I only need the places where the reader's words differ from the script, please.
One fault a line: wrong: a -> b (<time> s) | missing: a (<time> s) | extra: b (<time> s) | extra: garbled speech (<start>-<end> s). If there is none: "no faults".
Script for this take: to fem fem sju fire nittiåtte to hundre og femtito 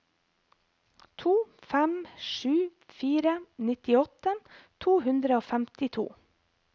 missing: fem (1.9 s)